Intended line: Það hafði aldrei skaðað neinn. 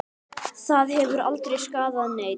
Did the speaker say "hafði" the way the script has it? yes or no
no